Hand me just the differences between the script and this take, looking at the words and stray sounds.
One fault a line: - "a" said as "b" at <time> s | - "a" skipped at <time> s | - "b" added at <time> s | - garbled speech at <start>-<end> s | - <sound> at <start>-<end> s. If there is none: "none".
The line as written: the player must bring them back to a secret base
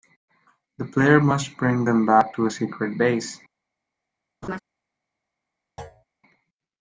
- laugh at 4.4-4.6 s
- thud at 5.8-6.0 s